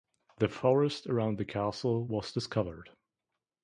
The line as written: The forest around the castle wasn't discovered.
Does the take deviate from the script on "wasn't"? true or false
true